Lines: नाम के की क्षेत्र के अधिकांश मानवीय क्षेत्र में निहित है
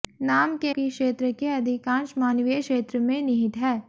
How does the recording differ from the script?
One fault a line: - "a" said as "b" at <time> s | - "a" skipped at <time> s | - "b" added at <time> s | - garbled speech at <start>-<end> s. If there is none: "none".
none